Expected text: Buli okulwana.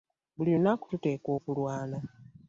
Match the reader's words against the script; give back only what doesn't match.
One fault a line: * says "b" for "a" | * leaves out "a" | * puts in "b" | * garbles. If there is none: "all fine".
* puts in "lunaku tuteekwa"